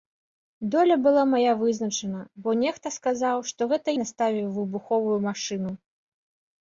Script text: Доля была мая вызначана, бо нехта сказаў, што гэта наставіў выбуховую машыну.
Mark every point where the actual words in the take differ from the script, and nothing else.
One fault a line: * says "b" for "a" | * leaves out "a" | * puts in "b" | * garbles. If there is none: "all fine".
all fine